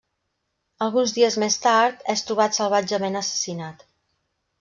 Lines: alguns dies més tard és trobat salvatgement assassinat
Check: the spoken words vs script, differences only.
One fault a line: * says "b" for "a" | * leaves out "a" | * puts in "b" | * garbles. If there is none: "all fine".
all fine